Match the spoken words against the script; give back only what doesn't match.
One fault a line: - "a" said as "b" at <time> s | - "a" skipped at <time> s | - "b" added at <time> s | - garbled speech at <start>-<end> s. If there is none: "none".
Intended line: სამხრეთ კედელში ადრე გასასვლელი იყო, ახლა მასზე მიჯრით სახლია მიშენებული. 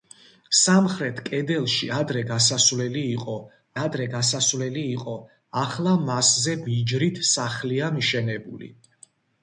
- "ადრე გასასვლელი იყო" added at 3.8 s